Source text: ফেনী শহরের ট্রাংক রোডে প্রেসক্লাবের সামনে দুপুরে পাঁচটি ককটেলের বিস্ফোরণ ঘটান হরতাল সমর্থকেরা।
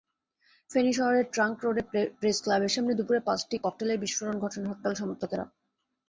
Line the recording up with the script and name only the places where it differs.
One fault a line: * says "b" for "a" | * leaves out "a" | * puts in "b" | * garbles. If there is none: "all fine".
all fine